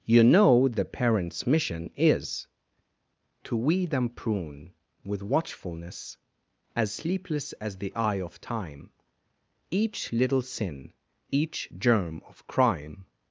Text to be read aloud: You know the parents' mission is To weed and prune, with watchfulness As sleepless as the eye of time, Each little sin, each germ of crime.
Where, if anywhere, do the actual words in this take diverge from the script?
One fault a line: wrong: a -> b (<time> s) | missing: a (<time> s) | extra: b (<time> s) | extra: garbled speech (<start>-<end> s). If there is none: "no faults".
no faults